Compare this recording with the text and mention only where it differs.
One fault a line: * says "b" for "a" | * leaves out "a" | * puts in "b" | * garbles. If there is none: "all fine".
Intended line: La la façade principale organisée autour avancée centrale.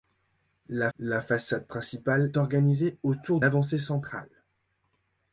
all fine